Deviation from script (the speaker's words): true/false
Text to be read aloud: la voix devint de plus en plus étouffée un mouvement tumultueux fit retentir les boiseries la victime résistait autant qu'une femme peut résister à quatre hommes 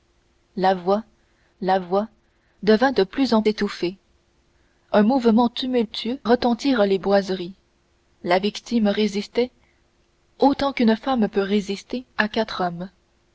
true